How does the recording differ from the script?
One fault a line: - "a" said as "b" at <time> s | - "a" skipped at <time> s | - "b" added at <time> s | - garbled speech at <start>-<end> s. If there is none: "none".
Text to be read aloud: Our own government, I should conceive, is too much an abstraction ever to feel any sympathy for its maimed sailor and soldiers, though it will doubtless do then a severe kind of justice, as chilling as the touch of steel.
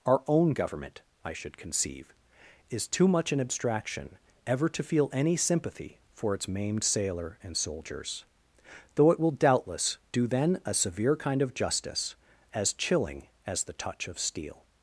none